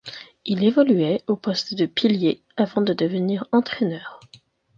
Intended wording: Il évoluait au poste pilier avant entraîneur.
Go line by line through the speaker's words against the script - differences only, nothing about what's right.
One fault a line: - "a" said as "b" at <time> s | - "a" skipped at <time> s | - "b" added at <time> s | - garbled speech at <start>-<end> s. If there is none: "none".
- "de" added at 1.8 s
- "de devenir" added at 2.8 s